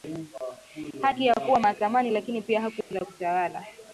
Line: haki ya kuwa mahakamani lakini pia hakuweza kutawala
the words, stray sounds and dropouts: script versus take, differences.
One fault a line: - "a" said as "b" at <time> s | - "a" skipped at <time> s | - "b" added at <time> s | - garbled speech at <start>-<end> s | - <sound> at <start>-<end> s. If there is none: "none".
- dropout at 2.8-2.9 s